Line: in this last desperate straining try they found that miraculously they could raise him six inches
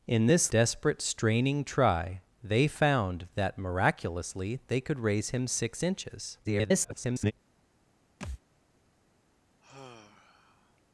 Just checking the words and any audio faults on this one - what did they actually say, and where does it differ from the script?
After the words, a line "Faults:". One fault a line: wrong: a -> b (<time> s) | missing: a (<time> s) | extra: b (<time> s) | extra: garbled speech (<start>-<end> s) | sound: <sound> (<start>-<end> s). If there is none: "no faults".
in this desperate straining try they found that miraculously they could raise him six inches [garbled]
Faults:
missing: last (0.5 s)
extra: garbled speech (6.4-7.3 s)
sound: thud (8.2-8.4 s)
sound: sigh (9.6-10.8 s)